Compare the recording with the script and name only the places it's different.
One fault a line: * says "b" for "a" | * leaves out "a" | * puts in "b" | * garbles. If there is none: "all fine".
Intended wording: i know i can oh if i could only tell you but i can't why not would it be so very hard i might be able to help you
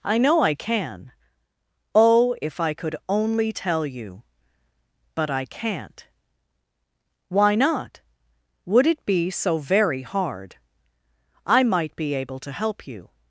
all fine